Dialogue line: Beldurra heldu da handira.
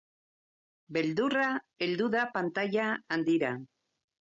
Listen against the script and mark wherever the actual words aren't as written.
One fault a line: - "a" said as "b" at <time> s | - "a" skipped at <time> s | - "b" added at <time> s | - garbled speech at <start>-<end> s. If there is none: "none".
- "pantaila" added at 2.4 s